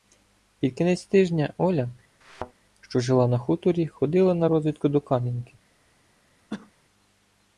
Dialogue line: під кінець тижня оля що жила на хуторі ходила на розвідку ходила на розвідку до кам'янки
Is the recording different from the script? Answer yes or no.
yes